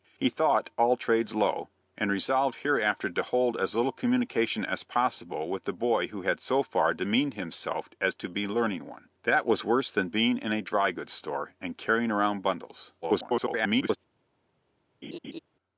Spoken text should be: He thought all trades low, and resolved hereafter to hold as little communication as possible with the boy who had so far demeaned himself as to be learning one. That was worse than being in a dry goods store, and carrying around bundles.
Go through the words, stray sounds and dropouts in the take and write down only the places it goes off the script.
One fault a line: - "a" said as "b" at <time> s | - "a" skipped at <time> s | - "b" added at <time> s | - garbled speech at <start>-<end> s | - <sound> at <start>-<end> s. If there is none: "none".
- garbled speech at 13.0-14.0 s
- laugh at 15.0-15.4 s